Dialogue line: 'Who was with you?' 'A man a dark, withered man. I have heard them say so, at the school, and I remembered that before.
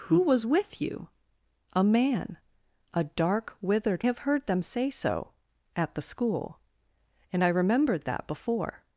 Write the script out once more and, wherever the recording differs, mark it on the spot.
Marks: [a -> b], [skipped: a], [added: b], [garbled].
'Who was with you?' 'A man a dark, withered [skipped: man. I] have heard them say so, at the school, and I remembered that before.